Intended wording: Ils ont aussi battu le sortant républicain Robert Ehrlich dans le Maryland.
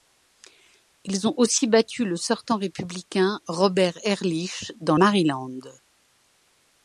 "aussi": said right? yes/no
yes